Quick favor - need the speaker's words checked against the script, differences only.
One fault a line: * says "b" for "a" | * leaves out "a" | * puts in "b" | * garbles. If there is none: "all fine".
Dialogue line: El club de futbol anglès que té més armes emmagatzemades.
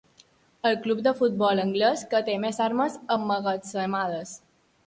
all fine